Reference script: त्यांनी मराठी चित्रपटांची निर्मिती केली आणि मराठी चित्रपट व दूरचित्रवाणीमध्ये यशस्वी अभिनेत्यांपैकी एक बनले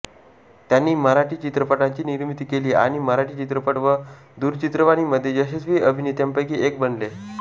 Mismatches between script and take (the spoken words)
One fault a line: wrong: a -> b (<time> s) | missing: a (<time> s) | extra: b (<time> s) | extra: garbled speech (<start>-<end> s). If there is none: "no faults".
no faults